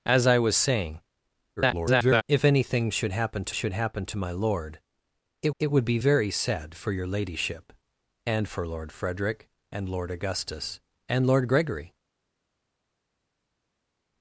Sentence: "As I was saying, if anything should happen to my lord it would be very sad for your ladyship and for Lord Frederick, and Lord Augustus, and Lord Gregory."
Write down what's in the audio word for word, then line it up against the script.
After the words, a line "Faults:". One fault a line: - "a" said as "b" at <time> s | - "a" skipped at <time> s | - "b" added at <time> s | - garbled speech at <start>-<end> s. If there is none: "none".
"As I was saying, [garbled] if anything should happen to should happen to my lord it it would be very sad for your ladyship and for Lord Frederick, and Lord Augustus, and Lord Gregory."
Faults:
- garbled speech at 1.6-2.2 s
- "should happen to" added at 3.5 s
- "it" added at 5.6 s